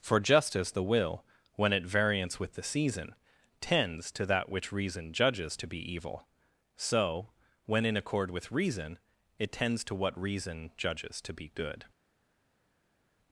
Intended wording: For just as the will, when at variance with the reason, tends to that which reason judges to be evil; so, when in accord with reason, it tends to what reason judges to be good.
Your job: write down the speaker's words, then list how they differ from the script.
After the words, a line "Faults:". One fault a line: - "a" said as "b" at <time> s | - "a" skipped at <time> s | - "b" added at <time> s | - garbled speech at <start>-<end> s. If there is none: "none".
For just as the will, when at variance with the season, tends to that which reason judges to be evil; so, when in accord with reason, it tends to what reason judges to be good.
Faults:
- "reason" said as "season" at 2.6 s